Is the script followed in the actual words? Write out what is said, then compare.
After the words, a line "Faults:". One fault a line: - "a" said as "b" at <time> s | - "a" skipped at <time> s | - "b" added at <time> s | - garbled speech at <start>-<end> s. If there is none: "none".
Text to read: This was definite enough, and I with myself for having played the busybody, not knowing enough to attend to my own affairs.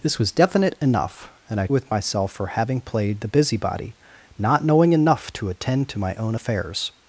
This was definite enough, and I with myself for having played the busybody, not knowing enough to attend to my own affairs.
Faults:
none